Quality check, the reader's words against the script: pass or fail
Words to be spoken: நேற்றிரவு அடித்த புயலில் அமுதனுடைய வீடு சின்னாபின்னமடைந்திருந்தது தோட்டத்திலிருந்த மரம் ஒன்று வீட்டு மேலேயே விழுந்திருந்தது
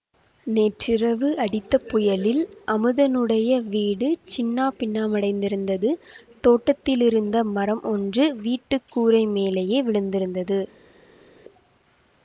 fail